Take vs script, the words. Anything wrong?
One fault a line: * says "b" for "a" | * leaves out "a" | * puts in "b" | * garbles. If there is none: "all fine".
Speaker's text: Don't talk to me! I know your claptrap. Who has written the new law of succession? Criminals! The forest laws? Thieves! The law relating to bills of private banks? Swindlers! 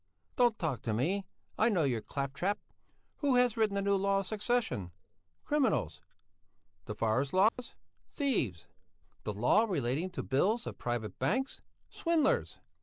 all fine